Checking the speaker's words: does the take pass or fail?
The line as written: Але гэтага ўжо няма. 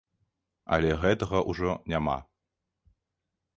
pass